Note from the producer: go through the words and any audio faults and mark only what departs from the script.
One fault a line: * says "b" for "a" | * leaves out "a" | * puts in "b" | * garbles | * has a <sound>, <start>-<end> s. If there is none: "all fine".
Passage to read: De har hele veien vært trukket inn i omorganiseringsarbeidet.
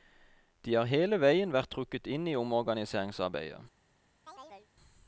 * has a chirp, 4.3-4.7 s